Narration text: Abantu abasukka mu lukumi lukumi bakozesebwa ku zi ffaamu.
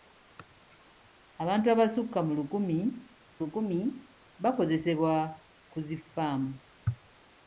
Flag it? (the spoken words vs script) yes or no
no